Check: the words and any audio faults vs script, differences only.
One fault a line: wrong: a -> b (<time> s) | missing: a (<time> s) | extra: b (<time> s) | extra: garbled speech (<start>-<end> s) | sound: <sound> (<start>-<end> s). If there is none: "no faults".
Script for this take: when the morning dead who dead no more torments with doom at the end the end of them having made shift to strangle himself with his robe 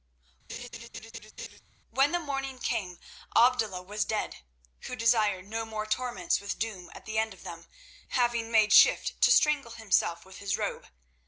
sound: laugh (0.5-1.6 s)
extra: came abdullah was (2.6 s)
wrong: dead -> desired (4.9 s)
missing: the end (7.3 s)